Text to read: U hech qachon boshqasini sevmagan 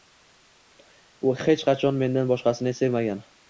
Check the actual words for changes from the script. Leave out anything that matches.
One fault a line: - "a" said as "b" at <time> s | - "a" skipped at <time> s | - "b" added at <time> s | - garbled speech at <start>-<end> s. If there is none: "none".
- "mendan" added at 2.0 s